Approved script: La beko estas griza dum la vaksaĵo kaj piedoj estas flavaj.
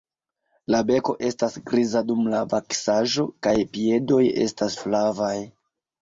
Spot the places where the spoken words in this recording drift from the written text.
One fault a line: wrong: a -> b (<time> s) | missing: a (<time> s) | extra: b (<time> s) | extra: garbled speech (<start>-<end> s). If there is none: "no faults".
no faults